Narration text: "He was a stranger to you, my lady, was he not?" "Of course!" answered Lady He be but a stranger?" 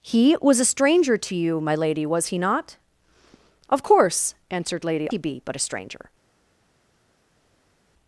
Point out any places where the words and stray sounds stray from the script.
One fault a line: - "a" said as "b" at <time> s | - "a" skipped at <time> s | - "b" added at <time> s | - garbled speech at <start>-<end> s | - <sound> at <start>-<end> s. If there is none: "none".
none